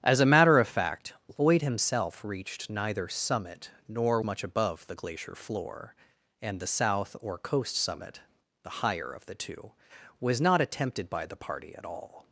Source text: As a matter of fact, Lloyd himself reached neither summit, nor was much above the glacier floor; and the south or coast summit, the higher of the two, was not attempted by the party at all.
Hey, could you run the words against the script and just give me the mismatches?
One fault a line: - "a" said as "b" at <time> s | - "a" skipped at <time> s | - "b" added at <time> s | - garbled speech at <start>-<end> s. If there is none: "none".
- "was" skipped at 4.2 s